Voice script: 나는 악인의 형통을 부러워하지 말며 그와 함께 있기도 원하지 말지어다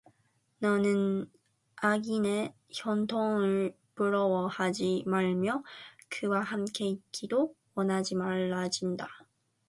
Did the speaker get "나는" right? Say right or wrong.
wrong